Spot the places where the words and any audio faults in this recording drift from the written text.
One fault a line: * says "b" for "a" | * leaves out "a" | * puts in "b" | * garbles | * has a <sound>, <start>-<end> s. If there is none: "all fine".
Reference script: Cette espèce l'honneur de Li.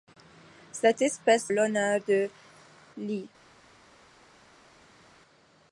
all fine